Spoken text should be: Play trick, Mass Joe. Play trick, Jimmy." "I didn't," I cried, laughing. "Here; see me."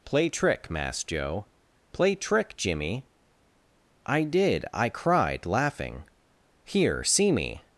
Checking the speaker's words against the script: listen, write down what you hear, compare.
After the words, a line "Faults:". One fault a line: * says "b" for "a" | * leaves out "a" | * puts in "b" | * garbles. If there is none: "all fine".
Play trick, Mass Joe. Play trick, Jimmy." "I did," I cried, laughing. "Here; see me."
Faults:
* says "did" for "didn't"